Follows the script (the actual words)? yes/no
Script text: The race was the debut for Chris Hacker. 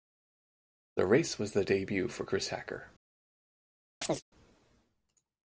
yes